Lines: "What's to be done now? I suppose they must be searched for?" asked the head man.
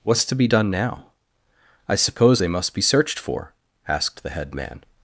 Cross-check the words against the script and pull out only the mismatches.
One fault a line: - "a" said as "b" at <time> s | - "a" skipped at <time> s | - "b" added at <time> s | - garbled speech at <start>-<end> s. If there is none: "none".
none